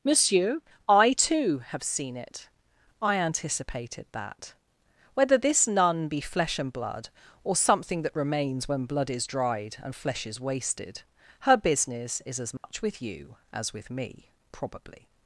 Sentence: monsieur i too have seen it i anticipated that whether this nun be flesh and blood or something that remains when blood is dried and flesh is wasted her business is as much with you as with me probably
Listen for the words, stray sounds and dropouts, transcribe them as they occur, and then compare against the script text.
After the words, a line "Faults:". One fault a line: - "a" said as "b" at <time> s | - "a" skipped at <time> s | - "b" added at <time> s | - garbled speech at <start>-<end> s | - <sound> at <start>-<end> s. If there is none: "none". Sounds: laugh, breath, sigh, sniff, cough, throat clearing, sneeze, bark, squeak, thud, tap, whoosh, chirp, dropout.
monsieur i too have seen it i anticipated that whether this nun be flesh and blood or something that remains when blood is dried and flesh is wasted her business is as much with you as with me probably
Faults:
- dropout at 12.6-12.6 s